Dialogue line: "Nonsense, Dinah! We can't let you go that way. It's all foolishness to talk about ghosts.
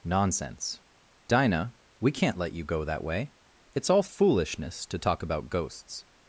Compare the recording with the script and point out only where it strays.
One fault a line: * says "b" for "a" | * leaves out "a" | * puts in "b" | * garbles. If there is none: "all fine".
all fine